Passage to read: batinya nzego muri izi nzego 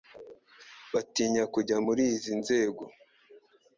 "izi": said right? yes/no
yes